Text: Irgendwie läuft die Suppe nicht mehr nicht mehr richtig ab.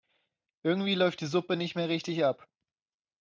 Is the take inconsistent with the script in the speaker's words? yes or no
yes